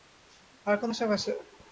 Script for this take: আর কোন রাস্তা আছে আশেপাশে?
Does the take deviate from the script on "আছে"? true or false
true